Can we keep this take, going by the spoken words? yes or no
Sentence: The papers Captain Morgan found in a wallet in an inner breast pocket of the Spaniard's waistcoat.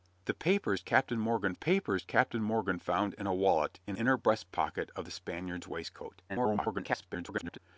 no